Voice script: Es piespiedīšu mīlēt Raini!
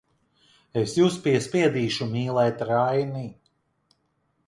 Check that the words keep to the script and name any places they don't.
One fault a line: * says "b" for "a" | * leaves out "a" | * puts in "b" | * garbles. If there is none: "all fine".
* puts in "jūs"